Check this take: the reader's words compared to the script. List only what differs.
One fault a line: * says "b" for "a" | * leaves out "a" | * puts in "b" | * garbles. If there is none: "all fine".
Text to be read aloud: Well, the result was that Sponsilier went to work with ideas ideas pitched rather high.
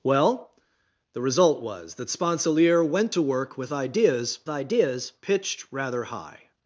all fine